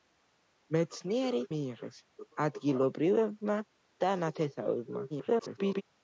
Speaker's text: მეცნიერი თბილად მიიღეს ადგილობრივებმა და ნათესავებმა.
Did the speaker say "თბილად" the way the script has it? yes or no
no